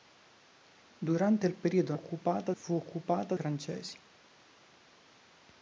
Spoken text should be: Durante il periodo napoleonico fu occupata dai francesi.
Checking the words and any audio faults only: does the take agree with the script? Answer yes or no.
no